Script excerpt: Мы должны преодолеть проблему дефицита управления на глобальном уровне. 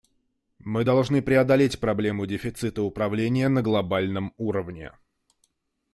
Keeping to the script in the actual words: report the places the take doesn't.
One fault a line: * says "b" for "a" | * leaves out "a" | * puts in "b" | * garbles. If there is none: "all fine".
all fine